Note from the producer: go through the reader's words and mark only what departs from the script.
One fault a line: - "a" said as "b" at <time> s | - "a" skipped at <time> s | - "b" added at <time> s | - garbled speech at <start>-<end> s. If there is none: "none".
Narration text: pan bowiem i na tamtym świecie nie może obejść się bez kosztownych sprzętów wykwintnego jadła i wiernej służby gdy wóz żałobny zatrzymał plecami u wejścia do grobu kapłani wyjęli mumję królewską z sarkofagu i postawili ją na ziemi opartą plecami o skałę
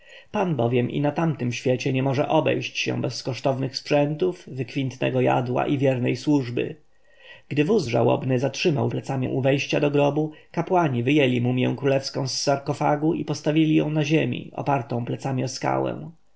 none